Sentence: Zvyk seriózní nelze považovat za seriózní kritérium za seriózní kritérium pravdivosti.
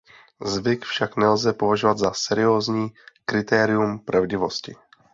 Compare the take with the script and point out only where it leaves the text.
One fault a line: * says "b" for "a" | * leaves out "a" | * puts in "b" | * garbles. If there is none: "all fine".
* says "však" for "seriózní"
* leaves out "za seriózní kritérium"